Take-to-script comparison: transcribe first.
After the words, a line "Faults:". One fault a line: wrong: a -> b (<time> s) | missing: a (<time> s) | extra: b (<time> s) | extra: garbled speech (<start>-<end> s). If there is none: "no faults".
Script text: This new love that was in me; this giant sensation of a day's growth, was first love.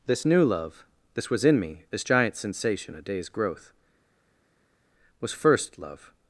This new love this was in me; this giant sensation a day's growth, was first love.
Faults:
wrong: that -> this (1.1 s)
missing: of (2.9 s)